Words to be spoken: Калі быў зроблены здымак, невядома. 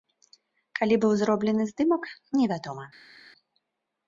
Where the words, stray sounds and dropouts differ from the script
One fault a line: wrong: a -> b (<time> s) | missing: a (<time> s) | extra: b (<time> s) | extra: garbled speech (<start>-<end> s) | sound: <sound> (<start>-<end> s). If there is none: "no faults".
no faults